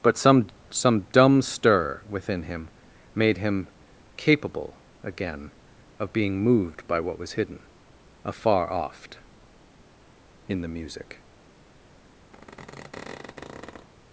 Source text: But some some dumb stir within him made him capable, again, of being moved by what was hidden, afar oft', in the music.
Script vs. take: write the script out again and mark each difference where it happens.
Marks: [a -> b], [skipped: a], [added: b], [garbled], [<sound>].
But some some dumb stir within him made him capable, again, of being moved by what was hidden, afar oft', in the music. [squeak]